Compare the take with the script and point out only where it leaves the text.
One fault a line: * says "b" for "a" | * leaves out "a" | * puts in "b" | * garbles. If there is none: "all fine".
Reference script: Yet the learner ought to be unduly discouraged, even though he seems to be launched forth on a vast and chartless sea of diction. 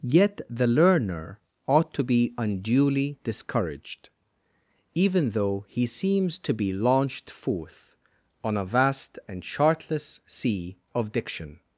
all fine